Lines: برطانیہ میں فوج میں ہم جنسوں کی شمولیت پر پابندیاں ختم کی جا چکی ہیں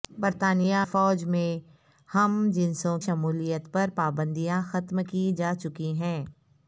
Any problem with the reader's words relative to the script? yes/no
yes